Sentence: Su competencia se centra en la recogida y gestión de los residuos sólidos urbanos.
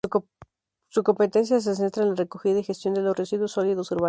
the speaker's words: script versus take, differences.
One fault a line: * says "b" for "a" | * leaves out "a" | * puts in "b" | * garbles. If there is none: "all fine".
all fine